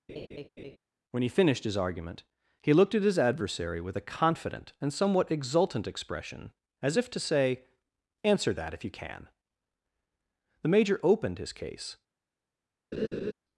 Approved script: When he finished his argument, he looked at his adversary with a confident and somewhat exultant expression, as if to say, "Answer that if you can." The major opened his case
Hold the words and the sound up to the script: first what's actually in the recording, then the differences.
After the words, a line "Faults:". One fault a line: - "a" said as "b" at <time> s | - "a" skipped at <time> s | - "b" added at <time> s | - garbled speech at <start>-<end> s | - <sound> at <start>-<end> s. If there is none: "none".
When he finished his argument, he looked at his adversary with a confident and somewhat exultant expression, as if to say, "Answer that if you can." The major opened his case
Faults:
- laugh at 0.1-0.8 s
- laugh at 12.9-13.3 s